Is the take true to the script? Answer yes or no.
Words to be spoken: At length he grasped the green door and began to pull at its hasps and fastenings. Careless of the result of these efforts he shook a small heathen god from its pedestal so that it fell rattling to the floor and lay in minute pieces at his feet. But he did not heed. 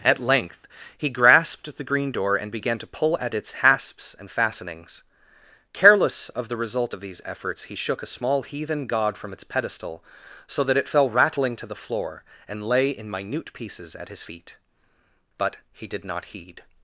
yes